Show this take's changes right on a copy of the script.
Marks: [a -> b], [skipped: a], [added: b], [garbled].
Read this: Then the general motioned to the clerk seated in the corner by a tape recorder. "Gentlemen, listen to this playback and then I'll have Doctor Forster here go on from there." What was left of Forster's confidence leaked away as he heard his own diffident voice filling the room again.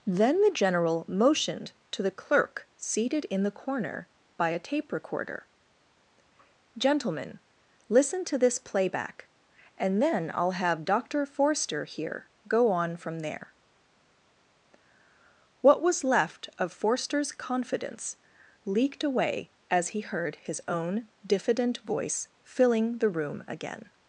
Then the general motioned to the clerk seated in the corner by a tape recorder. "Gentlemen, listen to this playback and then I'll have Doctor Forster here go on from there." What was left of Forster's confidence leaked away as he heard his own diffident voice filling the room again.